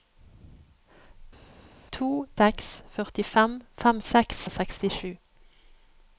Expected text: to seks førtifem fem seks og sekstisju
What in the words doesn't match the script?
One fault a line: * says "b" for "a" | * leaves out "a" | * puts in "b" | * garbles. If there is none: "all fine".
all fine